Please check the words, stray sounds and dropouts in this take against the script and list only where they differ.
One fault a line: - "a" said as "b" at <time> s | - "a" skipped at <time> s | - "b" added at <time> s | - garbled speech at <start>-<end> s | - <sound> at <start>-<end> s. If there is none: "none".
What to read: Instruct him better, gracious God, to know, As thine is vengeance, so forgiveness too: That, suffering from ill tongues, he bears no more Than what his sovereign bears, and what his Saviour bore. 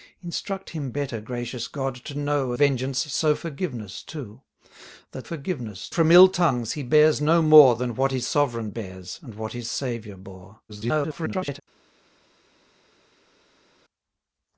- "As thine is" skipped at 2.5 s
- "suffering" said as "forgiveness" at 5.2 s
- garbled speech at 10.7-11.6 s